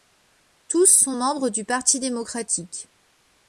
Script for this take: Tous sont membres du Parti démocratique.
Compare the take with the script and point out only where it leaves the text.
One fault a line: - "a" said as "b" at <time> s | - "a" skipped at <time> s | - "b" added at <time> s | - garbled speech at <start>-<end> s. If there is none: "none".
none